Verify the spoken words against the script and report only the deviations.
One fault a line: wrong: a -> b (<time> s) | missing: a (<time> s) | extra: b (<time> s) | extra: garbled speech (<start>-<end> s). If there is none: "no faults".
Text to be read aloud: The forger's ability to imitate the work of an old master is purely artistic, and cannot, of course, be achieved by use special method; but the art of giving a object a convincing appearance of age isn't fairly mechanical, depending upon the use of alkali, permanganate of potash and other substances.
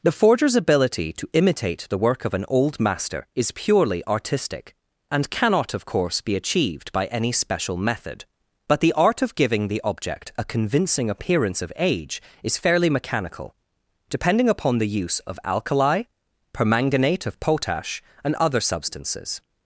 wrong: use -> any (7.1 s)
wrong: a -> the (9.7 s)
wrong: isn't -> is (12.4 s)